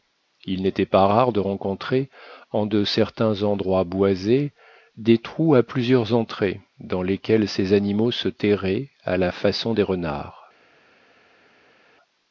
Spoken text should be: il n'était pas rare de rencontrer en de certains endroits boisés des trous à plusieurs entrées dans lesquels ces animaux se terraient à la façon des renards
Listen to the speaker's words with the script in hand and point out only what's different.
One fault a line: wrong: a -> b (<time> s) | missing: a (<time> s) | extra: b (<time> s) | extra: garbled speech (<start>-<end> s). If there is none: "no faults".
no faults